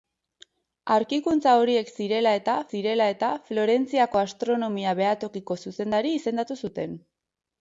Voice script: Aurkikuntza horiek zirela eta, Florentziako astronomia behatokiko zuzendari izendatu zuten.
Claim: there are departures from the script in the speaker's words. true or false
true